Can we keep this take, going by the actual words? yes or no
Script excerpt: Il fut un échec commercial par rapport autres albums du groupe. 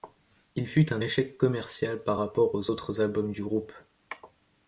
no